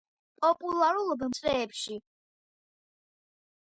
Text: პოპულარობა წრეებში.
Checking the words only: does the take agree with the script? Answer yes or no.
yes